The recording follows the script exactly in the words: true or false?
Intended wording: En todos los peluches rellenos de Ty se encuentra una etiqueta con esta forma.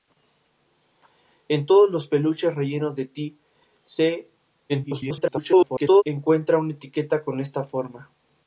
false